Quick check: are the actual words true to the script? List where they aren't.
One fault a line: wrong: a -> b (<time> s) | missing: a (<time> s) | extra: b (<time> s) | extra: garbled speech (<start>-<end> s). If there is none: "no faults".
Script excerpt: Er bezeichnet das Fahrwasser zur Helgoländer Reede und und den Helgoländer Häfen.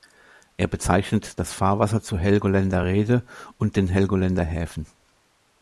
missing: und (3.8 s)